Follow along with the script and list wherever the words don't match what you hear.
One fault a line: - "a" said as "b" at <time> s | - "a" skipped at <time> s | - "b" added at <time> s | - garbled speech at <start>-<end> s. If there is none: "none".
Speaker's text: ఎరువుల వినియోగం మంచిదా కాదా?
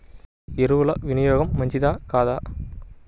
none